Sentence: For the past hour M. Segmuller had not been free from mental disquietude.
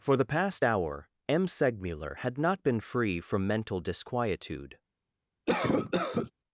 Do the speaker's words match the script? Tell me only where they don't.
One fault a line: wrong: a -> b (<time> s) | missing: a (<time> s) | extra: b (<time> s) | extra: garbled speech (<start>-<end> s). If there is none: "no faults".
no faults